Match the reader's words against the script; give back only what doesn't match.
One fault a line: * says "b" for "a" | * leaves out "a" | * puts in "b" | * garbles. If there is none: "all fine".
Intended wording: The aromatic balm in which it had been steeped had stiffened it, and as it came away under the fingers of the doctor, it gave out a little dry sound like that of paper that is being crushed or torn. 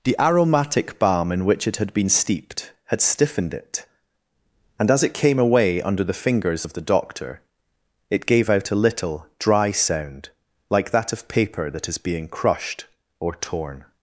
all fine